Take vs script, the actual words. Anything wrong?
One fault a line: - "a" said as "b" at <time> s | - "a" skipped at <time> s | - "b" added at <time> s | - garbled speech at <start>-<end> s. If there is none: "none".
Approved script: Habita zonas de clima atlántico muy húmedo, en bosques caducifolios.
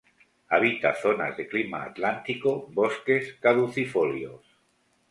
- "muy húmedo en" skipped at 2.7 s